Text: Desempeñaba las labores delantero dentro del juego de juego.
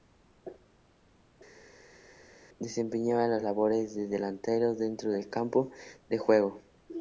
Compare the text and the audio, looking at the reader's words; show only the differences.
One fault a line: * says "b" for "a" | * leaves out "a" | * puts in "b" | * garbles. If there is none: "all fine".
* puts in "de"
* says "campo" for "juego"